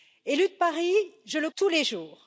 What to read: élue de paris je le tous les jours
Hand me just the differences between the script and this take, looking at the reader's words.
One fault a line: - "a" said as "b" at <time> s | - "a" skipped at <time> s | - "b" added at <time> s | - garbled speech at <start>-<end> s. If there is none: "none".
none